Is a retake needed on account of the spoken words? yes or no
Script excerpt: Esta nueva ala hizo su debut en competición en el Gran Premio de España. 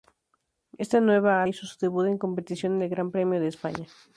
yes